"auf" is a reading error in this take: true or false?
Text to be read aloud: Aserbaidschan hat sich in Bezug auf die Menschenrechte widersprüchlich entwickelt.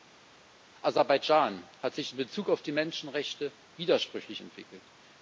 false